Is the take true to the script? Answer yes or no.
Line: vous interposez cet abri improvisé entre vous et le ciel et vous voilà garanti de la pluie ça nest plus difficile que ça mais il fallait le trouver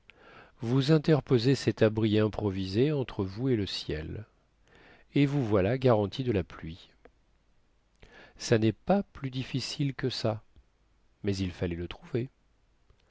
no